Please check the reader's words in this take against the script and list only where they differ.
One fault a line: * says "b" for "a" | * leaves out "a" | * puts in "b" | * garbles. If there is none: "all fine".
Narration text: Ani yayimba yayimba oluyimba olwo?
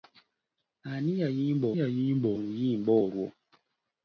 all fine